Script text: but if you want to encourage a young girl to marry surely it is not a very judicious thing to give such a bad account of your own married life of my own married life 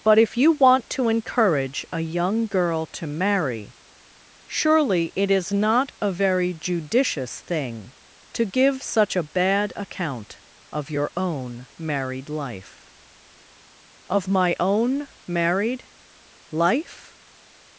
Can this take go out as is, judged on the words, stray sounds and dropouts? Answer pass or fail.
pass